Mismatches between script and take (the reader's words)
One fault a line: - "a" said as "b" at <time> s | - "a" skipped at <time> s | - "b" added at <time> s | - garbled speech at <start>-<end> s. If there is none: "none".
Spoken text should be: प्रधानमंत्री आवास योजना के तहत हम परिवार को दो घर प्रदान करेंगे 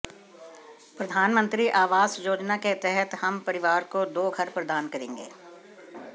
none